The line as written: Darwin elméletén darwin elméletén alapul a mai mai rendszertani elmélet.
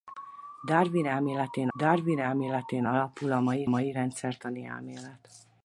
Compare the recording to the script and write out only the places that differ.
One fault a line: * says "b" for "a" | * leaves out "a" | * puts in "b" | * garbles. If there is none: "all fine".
all fine